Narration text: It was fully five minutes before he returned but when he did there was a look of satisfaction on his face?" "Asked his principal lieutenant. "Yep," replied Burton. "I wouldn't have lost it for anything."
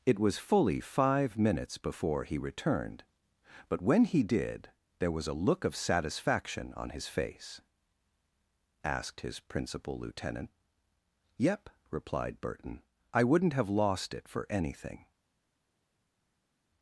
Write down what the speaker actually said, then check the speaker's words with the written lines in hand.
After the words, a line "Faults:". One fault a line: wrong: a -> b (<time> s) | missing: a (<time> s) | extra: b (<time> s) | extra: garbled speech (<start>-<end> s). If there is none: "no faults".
It was fully five minutes before he returned but when he did there was a look of satisfaction on his face?" "Asked his principal lieutenant. "Yep," replied Burton. "I wouldn't have lost it for anything."
Faults:
no faults